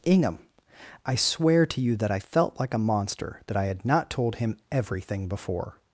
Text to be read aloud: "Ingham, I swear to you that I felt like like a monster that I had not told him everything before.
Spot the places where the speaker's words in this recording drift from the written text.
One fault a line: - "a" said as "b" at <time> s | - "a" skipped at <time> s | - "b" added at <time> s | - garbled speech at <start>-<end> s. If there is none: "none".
- "like" skipped at 2.7 s